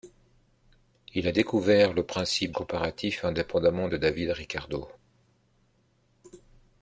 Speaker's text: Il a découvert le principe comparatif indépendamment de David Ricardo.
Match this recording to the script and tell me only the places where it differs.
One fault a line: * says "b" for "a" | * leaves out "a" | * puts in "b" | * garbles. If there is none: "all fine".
all fine